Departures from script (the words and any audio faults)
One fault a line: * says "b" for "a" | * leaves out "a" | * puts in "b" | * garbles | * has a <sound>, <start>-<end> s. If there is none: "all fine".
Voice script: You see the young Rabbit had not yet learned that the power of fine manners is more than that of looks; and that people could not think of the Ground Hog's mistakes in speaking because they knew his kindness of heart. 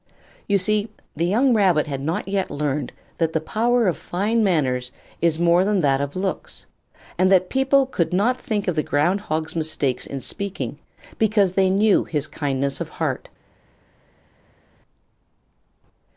all fine